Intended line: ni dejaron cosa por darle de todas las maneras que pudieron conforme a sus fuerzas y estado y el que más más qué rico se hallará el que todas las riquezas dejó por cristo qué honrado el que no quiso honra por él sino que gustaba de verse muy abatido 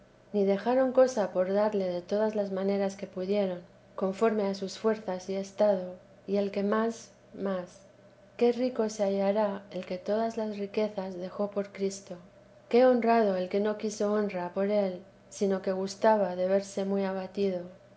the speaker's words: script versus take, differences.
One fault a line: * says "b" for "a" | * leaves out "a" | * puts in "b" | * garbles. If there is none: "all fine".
all fine